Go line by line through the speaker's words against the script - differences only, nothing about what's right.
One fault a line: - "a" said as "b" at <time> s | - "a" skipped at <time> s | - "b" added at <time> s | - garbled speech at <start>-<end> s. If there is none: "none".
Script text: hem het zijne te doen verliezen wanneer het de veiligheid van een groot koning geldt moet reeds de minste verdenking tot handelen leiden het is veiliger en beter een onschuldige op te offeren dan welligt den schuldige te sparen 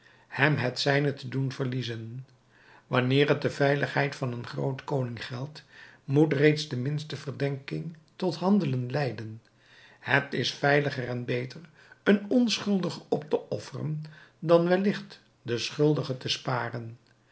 none